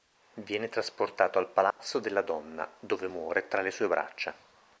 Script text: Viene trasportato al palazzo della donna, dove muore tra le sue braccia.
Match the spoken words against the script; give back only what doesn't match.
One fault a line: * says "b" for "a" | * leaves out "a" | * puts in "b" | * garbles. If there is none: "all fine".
all fine